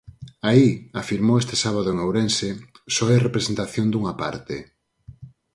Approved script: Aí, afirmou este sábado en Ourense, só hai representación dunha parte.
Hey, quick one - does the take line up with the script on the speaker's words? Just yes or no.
yes